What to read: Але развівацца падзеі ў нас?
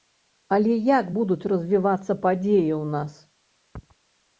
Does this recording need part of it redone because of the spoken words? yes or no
yes